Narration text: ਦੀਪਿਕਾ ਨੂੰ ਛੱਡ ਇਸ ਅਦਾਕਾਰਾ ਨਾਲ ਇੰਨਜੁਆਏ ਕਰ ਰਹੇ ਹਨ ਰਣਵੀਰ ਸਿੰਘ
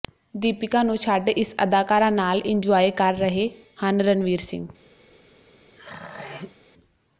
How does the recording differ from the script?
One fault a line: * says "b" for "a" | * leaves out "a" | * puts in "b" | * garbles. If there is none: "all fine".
all fine